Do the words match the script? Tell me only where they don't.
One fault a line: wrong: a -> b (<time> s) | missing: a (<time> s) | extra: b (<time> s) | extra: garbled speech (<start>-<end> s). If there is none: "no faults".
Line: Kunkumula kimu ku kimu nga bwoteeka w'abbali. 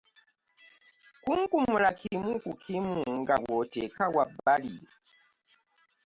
no faults